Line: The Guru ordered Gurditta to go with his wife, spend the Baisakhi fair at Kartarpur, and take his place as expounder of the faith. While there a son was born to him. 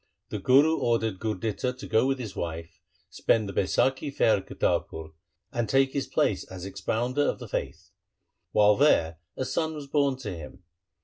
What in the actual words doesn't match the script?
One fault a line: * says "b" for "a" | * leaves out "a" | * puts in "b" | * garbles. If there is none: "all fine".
all fine